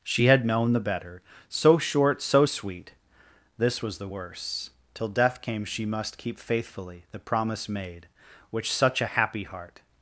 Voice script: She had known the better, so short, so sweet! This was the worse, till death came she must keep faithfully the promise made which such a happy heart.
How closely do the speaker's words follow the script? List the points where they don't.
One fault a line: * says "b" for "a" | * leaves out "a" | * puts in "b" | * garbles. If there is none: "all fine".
all fine